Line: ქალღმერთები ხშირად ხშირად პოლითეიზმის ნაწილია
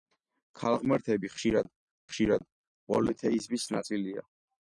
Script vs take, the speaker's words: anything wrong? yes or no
no